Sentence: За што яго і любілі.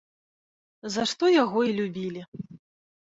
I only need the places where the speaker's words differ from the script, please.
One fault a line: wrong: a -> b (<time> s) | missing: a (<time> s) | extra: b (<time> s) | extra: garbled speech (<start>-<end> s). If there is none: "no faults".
no faults